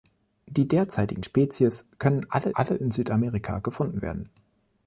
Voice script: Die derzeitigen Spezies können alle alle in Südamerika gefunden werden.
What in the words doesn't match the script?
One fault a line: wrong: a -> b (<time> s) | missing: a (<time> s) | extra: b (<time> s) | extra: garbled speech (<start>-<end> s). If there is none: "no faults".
no faults